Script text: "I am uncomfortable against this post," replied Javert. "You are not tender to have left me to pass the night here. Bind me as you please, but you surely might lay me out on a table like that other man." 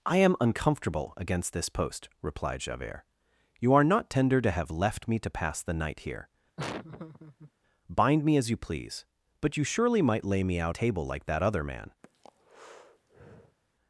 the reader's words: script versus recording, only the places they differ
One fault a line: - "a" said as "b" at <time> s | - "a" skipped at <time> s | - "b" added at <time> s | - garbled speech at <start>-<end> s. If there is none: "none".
- "on a" skipped at 10.7 s